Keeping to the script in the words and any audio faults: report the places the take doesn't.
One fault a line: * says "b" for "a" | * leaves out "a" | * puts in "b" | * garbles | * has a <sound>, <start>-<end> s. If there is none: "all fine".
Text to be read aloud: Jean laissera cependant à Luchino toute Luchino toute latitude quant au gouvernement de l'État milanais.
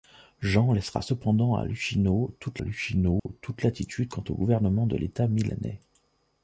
* has a dropout, 3.2-3.3 s